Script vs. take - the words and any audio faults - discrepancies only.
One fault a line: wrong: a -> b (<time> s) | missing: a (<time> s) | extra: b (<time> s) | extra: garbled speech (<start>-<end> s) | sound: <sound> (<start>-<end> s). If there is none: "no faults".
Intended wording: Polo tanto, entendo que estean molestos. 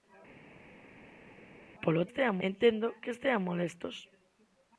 wrong: tanto -> estean (2.1 s)